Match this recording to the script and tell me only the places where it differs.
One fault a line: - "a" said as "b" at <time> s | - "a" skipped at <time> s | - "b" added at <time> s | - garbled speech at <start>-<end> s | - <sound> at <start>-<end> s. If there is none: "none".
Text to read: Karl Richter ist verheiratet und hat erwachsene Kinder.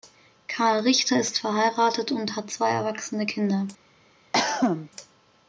- "zwei" added at 2.5 s
- cough at 4.3-4.9 s